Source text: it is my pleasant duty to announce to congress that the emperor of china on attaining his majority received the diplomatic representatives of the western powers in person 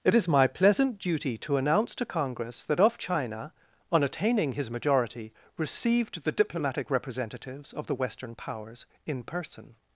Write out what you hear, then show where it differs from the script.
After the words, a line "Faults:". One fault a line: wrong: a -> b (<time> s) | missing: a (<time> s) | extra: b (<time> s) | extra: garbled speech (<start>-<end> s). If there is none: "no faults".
it is my pleasant duty to announce to congress that of china on attaining his majority received the diplomatic representatives of the western powers in person
Faults:
missing: the emperor (2.8 s)